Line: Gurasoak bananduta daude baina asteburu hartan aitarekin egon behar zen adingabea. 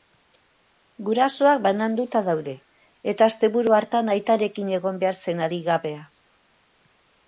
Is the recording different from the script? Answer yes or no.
yes